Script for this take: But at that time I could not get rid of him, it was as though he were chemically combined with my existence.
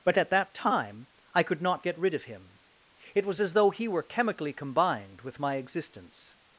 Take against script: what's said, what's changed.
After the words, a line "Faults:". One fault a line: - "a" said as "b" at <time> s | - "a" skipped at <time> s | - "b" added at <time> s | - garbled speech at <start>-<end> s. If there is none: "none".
But at that time I could not get rid of him, it was as though he were chemically combined with my existence.
Faults:
none